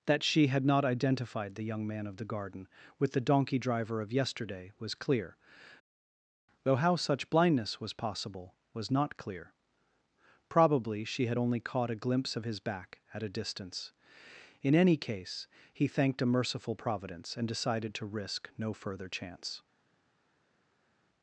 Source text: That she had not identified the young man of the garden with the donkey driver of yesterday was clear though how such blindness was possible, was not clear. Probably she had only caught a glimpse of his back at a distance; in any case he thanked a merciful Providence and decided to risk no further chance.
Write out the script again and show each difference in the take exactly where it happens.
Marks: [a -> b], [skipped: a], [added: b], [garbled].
That she had not identified the young man of the garden with the donkey driver of yesterday was clear though how such blindness was possible, was not clear. Probably she had only caught a glimpse of his back at a distance; in any case he thanked a merciful Providence and decided to risk no further chance.